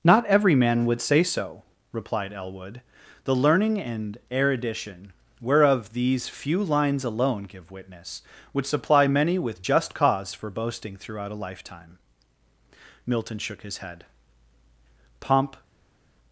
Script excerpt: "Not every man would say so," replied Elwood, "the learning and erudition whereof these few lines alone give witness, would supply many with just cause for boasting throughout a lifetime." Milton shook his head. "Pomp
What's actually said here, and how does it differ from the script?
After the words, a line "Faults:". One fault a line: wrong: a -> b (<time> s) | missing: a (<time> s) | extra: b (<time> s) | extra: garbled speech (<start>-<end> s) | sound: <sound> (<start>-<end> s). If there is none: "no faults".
"Not every man would say so," replied Elwood, "the learning and erudition whereof these few lines alone give witness, would supply many with just cause for boasting throughout a lifetime." Milton shook his head. "Pomp
Faults:
no faults